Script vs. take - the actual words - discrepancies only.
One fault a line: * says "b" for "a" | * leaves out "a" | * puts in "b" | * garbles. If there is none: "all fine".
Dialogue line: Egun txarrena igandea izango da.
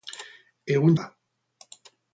* leaves out "txarrena igandea izango"